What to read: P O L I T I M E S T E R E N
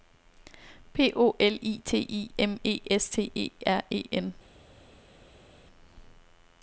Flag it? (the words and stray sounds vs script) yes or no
no